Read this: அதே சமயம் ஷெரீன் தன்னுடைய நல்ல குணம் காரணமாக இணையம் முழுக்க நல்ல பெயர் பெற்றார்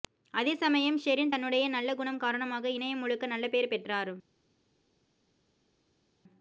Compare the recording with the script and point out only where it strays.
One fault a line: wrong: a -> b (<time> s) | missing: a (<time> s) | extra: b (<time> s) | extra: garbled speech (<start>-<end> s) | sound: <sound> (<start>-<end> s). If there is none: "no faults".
no faults